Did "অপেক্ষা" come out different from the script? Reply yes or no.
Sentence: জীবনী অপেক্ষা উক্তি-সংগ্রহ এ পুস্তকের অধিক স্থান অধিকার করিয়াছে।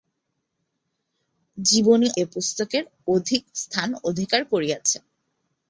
yes